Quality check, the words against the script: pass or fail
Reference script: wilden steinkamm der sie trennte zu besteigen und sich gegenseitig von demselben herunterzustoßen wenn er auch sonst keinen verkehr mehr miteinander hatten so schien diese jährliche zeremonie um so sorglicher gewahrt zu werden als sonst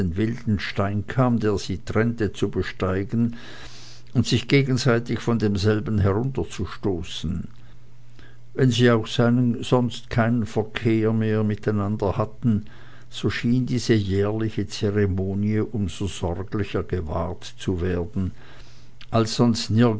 fail